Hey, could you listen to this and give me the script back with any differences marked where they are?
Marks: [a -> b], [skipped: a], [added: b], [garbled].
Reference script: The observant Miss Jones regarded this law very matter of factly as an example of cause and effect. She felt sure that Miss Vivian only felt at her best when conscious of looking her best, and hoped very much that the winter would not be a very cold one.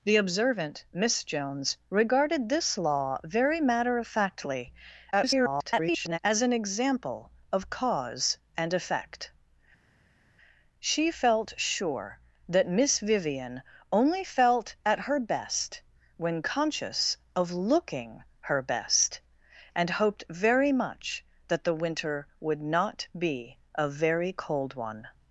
The observant Miss Jones regarded this law very matter of factly [garbled] as an example of cause and effect. She felt sure that Miss Vivian only felt at her best when conscious of looking her best, and hoped very much that the winter would not be a very cold one.